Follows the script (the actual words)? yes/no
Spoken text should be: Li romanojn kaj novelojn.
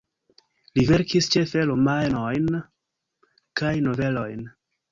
no